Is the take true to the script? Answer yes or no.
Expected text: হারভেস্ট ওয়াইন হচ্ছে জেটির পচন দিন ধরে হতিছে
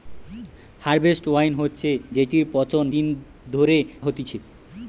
yes